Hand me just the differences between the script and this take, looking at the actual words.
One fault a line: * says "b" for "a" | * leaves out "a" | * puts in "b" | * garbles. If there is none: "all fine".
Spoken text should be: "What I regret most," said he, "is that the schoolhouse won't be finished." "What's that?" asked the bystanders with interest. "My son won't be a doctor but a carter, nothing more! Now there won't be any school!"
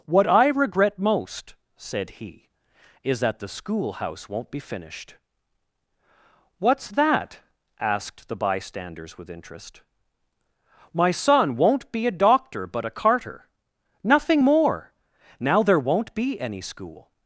all fine